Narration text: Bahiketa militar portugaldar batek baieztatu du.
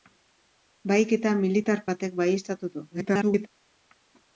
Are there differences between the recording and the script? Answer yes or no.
yes